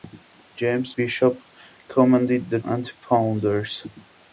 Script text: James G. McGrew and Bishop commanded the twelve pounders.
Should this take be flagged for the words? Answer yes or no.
yes